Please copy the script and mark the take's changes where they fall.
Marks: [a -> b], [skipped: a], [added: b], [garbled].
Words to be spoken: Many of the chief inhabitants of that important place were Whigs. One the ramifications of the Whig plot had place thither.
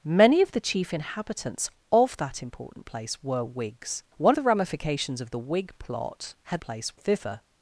Many of the chief inhabitants of that important place were Whigs. One the ramifications of the Whig plot had place thither.